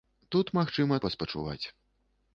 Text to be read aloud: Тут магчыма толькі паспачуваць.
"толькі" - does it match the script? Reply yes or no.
no